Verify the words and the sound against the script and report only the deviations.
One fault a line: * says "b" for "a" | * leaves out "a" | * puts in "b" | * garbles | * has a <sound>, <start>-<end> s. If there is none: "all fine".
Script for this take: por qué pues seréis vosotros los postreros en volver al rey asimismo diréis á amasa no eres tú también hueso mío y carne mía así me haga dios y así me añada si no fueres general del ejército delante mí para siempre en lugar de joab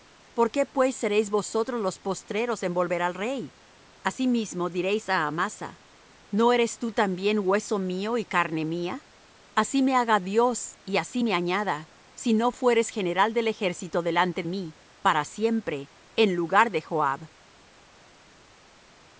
all fine